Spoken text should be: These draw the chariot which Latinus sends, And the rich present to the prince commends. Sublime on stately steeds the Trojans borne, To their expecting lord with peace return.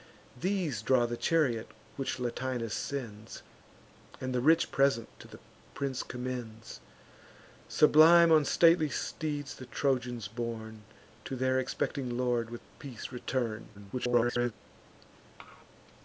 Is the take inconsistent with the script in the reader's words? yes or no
yes